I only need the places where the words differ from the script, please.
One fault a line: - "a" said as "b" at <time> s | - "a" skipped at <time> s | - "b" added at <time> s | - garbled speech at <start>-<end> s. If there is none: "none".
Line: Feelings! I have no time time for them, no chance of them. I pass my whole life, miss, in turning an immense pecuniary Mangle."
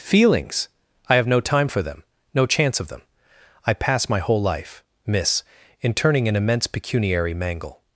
- "time" skipped at 1.7 s